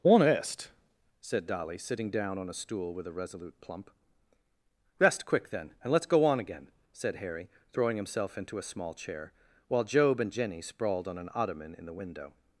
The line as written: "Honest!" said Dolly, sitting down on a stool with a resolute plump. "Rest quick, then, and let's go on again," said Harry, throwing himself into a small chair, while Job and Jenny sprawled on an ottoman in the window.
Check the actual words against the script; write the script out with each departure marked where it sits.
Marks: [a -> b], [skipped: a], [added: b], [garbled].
"Honest!" said Dolly, sitting down on a stool with a resolute plump. "Rest quick, then, and let's go on again," said Harry, throwing himself into a small chair, while Job and Jenny sprawled on an ottoman in the window.